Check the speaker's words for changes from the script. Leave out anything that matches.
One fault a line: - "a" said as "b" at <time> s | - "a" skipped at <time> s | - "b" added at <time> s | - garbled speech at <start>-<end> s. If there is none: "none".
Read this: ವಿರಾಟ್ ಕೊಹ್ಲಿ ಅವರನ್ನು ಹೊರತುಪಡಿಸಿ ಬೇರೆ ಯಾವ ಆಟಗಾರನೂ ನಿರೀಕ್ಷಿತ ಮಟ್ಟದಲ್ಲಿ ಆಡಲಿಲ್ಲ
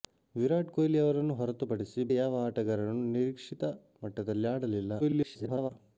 - "ಬೇರೆ" skipped at 2.0 s
- garbled speech at 5.0-5.7 s